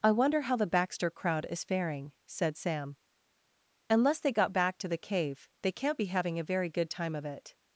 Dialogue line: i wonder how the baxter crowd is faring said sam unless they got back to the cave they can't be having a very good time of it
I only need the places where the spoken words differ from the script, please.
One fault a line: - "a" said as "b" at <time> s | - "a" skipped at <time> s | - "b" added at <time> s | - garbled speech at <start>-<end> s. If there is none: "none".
none